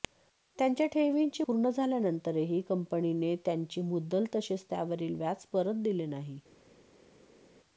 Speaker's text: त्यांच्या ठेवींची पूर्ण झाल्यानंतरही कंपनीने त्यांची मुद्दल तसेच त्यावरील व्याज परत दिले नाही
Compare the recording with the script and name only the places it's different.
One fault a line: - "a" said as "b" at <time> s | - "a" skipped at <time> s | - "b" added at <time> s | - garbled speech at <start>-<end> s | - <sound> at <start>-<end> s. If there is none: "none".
none